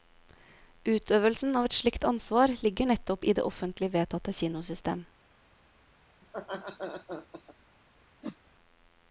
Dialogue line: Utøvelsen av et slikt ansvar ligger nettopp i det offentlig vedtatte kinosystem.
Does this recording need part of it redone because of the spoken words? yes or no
no